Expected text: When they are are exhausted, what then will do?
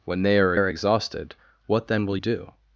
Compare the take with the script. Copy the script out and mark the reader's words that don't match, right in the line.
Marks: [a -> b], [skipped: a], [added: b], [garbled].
When they are are exhausted, what then will do?